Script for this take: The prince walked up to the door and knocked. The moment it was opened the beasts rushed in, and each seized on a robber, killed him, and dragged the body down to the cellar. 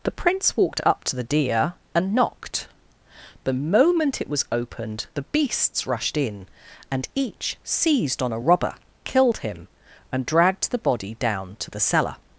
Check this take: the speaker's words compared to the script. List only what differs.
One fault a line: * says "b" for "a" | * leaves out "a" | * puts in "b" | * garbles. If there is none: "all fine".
* says "deer" for "door"